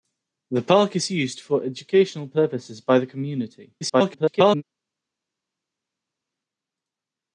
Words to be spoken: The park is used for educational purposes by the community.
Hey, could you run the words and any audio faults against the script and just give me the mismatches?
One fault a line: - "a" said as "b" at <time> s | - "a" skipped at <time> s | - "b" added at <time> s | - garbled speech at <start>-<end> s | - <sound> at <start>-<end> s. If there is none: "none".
- garbled speech at 3.8-4.6 s